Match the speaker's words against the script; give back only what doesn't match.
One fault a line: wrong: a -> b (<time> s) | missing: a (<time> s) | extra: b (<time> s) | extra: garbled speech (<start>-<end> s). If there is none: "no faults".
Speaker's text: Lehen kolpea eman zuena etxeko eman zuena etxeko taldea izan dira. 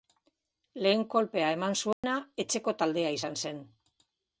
missing: eman zuena etxeko (2.8 s)
wrong: dira -> zen (3.5 s)